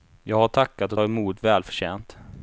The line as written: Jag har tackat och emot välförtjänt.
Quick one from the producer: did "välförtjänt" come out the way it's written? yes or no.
yes